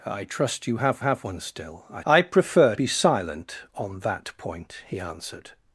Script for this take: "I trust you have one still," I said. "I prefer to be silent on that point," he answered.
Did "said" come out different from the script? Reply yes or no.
yes